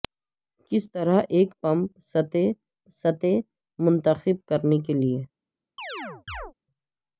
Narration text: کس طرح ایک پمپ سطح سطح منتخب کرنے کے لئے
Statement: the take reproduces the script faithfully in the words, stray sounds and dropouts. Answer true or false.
false